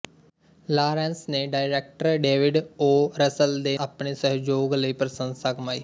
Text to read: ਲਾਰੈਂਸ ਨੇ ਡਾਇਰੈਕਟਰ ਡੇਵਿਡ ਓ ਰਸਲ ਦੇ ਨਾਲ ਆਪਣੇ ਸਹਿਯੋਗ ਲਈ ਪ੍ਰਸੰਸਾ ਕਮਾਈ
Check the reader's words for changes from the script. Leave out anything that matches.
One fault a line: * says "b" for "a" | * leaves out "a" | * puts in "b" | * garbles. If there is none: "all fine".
* leaves out "ਨਾਲ"